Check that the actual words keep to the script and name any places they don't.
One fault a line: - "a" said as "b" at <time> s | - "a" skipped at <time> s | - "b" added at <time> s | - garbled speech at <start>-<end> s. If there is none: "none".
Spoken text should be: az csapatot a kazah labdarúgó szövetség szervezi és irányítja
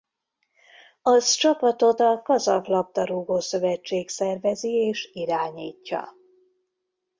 none